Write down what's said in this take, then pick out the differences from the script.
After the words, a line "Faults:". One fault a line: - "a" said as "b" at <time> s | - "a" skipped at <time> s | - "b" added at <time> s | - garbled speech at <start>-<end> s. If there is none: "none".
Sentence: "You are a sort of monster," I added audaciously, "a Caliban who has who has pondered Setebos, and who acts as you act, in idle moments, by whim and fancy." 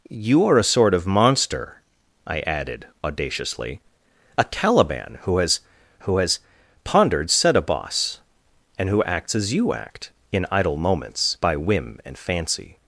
"You are a sort of monster," I added audaciously, "a Caliban who has who has pondered Setebos, and who acts as you act, in idle moments, by whim and fancy."
Faults:
none